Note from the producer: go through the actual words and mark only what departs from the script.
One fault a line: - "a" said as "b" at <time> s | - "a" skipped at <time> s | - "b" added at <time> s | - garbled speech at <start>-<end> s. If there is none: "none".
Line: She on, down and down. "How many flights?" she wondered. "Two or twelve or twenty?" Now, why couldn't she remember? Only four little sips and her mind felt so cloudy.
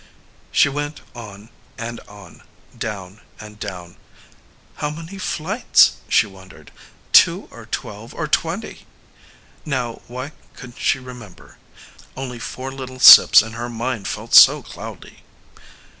- "went on and" added at 0.7 s